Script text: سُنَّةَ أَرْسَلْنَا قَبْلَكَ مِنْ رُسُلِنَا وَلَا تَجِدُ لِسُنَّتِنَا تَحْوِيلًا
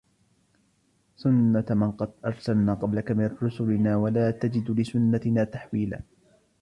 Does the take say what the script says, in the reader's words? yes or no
no